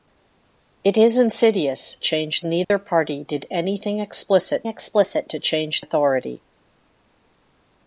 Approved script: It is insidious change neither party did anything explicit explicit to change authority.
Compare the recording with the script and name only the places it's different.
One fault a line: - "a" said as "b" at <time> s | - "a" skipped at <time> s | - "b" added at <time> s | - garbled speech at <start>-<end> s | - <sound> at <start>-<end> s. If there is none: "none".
- dropout at 2.6-2.7 s